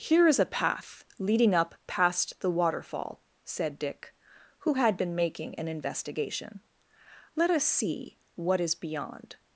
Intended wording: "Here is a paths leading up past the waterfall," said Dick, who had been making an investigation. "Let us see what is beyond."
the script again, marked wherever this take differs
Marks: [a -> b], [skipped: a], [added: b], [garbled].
"Here is a [paths -> path] leading up past the waterfall," said Dick, who had been making an investigation. "Let us see what is beyond."